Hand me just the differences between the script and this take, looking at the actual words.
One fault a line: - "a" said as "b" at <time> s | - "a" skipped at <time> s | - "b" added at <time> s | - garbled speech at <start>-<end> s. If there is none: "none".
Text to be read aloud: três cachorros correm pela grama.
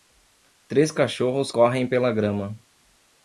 none